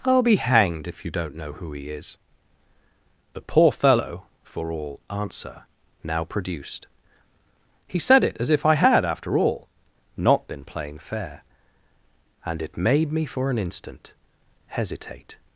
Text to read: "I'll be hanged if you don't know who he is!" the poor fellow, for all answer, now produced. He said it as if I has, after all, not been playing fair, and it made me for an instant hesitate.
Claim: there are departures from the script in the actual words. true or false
true